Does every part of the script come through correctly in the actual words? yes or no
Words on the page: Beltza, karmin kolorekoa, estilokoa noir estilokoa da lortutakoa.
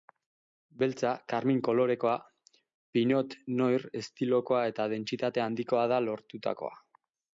no